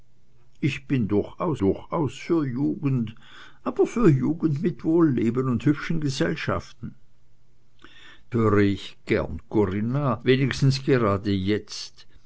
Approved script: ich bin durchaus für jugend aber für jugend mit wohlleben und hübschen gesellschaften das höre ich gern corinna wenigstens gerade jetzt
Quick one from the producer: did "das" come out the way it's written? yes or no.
no